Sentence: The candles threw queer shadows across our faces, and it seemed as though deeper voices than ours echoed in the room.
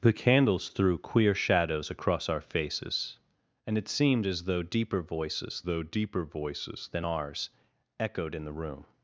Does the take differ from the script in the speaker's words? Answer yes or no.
yes